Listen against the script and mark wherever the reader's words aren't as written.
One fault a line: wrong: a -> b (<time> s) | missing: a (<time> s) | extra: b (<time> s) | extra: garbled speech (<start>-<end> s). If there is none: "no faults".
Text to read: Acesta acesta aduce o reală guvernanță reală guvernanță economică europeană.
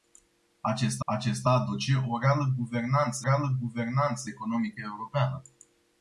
no faults